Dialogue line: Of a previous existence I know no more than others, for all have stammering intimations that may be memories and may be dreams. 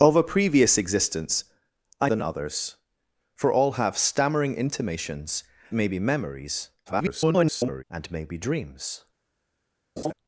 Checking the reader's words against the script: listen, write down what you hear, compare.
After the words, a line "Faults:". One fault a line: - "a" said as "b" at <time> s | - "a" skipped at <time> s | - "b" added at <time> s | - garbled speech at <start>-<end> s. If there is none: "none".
Of a previous existence I than others, for all have stammering intimations may be memories [garbled] and may be dreams.
Faults:
- "know no more" skipped at 2.1 s
- "that" skipped at 5.4 s
- garbled speech at 6.9-7.8 s